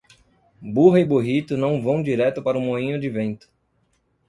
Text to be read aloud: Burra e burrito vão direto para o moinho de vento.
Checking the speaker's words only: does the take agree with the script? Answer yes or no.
no